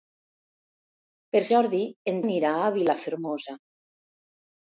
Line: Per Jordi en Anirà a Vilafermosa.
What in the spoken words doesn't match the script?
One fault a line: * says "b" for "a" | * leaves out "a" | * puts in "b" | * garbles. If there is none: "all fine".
all fine